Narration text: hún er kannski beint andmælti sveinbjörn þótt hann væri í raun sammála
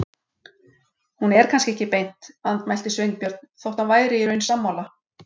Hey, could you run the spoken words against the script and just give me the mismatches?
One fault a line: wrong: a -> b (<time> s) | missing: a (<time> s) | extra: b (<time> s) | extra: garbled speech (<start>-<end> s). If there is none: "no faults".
extra: ekki (1.7 s)